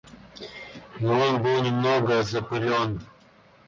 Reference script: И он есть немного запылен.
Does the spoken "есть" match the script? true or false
false